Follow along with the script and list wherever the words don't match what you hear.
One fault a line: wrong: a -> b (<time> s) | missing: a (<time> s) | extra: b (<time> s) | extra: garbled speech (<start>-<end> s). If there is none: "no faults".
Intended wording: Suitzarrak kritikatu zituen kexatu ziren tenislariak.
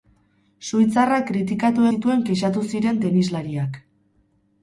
no faults